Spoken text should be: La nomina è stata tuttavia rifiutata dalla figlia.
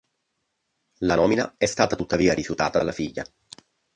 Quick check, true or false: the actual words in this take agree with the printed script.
true